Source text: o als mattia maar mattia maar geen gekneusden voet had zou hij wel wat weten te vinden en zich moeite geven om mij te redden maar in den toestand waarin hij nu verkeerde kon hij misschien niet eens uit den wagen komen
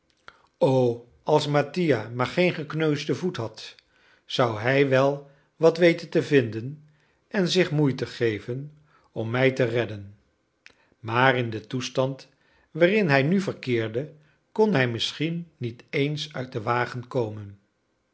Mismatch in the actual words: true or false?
true